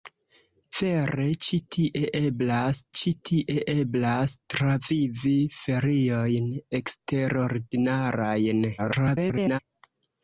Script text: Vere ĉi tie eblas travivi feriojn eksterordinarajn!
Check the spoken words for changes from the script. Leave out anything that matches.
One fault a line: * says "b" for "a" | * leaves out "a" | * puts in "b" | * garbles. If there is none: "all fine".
* puts in "ĉi tie eblas"
* garbles